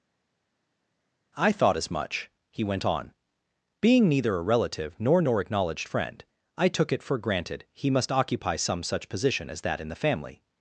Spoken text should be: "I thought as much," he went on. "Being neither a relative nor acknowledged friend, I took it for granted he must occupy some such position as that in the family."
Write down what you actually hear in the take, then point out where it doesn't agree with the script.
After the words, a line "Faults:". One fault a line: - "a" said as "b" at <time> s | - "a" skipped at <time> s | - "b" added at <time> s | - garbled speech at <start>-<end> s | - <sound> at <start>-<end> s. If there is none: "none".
"I thought as much," he went on. "Being neither a relative nor nor acknowledged friend, I took it for granted he must occupy some such position as that in the family."
Faults:
- "nor" added at 5.2 s